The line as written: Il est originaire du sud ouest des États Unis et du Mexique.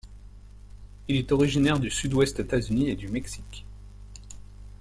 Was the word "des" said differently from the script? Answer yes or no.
yes